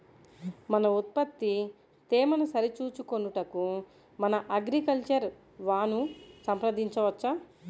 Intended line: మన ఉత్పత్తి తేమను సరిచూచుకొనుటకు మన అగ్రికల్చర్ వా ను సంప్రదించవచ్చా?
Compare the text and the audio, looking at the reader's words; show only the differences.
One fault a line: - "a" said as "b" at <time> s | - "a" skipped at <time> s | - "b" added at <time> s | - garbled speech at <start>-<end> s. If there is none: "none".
none